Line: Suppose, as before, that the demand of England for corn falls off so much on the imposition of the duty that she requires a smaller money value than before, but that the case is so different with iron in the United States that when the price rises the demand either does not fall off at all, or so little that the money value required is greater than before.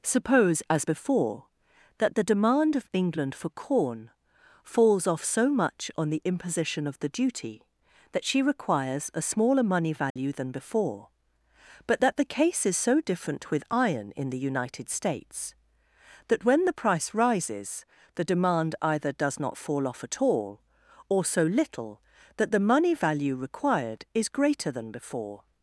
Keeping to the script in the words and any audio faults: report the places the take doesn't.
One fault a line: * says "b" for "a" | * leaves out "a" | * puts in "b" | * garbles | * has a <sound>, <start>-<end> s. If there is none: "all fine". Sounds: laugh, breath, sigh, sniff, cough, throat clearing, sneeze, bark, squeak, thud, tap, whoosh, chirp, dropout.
* has a dropout, 10.1-10.2 s